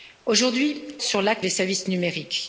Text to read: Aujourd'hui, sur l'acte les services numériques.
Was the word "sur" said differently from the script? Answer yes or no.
no